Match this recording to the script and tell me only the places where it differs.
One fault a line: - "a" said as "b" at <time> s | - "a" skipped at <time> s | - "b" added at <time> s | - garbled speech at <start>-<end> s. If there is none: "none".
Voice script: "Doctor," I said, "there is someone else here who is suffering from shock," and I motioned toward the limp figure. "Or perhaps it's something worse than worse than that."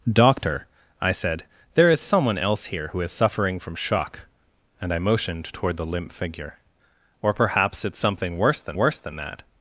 none